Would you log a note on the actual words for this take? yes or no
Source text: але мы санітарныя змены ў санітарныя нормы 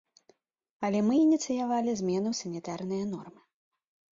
yes